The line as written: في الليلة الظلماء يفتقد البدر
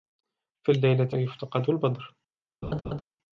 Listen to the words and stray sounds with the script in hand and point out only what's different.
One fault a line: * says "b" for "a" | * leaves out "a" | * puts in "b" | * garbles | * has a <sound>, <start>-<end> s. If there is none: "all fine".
* leaves out "الظلماء"
* has a laugh, 2.6-3.0 s